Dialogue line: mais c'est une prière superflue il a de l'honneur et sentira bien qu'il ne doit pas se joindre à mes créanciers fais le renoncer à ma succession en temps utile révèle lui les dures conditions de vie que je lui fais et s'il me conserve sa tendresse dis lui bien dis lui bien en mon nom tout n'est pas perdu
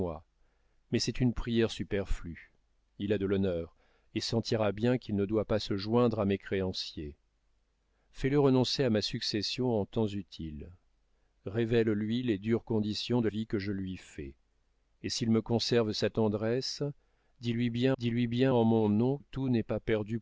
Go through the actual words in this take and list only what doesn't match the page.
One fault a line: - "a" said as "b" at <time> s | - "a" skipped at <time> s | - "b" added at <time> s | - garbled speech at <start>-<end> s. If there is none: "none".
none